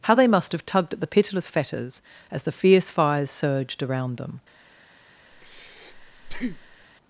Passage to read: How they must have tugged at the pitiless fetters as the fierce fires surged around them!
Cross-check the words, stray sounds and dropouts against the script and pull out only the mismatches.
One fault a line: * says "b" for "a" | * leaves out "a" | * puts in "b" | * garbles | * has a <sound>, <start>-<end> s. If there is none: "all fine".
* has a breath, 5.3-6.9 s